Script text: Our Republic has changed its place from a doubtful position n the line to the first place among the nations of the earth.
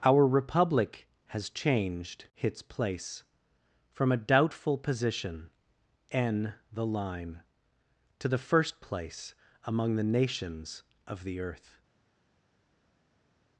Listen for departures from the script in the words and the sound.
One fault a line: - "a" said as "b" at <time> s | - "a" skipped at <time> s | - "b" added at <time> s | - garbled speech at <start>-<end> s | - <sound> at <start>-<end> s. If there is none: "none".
none